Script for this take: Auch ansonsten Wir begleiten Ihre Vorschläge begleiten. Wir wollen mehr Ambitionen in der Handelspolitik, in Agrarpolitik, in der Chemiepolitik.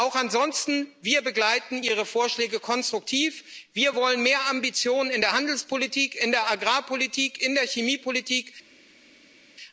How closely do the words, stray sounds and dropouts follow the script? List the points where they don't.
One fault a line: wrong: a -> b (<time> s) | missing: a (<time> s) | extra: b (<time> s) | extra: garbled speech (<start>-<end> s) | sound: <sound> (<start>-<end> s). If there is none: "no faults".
wrong: begleiten -> konstruktiv (2.6 s)
extra: der (6.3 s)